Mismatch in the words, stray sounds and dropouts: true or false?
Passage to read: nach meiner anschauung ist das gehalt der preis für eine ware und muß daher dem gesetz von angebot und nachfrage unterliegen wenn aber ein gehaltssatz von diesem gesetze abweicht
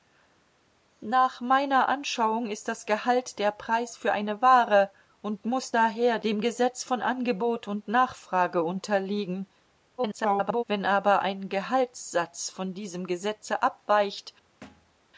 true